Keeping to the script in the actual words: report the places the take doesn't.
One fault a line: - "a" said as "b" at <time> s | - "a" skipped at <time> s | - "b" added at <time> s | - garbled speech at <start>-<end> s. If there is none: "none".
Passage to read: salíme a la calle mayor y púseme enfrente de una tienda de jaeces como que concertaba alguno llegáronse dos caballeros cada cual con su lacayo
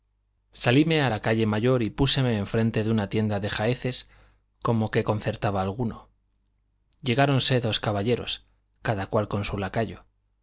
none